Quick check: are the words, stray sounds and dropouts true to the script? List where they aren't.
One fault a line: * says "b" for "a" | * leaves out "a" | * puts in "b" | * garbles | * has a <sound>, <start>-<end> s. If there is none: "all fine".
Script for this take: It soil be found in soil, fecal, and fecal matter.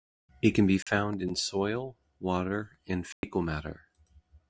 * says "can" for "soil"
* has a dropout, 0.8-0.9 s
* says "water" for "fecal"
* has a dropout, 3.1-3.2 s